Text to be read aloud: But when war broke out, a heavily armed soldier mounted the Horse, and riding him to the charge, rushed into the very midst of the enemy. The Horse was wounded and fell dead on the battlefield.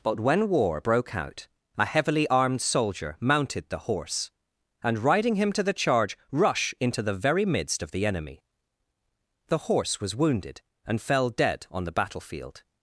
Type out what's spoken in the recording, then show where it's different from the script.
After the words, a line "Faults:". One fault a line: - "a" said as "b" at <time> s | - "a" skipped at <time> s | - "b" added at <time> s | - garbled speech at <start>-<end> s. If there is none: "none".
But when war broke out, a heavily armed soldier mounted the Horse, and riding him to the charge, rush into the very midst of the enemy. The Horse was wounded and fell dead on the battlefield.
Faults:
- "rushed" said as "rush" at 6.3 s